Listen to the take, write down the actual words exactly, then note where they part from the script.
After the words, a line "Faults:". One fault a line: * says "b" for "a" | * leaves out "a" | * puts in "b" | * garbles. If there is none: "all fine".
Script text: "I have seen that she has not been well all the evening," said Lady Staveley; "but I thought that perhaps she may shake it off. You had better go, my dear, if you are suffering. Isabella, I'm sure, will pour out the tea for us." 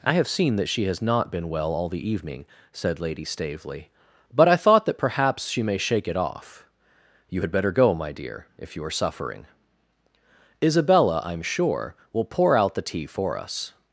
"I have seen that she has not been well all the evening," said Lady Staveley; "but I thought that perhaps she may shake it off. You had better go, my dear, if you are suffering. Isabella, I'm sure, will pour out the tea for us."
Faults:
all fine